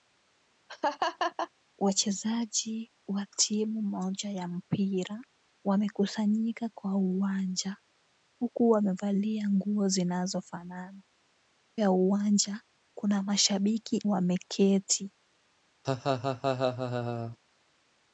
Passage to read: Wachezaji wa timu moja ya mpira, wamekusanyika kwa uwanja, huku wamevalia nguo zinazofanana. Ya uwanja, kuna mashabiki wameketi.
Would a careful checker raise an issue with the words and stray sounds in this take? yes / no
yes